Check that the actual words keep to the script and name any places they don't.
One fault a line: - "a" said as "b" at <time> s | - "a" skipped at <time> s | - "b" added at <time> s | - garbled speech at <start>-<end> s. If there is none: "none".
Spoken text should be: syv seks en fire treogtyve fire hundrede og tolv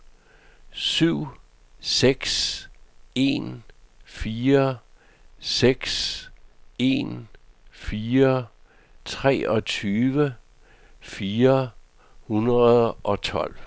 - "seks en fire" added at 5.4 s